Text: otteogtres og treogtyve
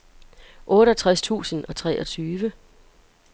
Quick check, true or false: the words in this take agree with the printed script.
false